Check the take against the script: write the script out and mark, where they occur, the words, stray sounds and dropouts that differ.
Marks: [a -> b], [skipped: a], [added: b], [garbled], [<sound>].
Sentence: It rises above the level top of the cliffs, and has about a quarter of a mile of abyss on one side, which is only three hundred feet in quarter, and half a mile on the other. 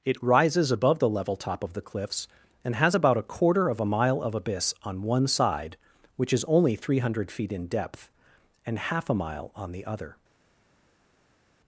It rises above the level top of the cliffs, and has about a quarter of a mile of abyss on one side, which is only three hundred feet in [quarter, -> depth] and half a mile on the other.